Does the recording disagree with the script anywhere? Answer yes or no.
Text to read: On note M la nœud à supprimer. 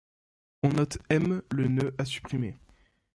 yes